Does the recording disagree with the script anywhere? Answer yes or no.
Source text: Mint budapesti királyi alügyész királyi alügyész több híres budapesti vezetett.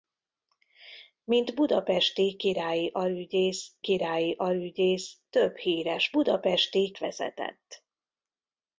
no